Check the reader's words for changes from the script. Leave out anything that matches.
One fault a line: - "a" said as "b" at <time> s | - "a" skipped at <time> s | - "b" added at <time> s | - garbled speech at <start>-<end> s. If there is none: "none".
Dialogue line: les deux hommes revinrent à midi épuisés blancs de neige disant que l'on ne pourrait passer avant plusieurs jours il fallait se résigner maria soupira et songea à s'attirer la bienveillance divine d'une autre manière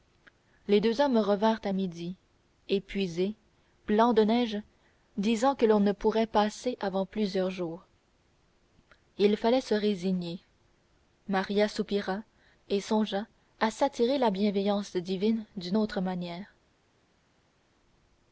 none